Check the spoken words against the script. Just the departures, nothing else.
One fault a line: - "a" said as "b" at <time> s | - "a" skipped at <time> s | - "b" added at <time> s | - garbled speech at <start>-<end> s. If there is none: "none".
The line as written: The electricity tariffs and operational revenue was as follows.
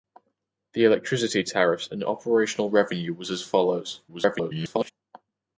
- garbled speech at 4.1-4.9 s